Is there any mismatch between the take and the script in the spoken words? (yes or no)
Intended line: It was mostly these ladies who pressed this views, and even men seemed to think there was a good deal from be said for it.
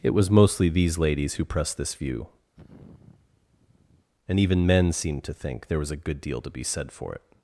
yes